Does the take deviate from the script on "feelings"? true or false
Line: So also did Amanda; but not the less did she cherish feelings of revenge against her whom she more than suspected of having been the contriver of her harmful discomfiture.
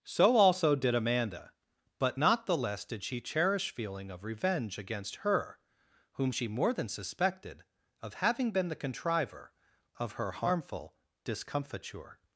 true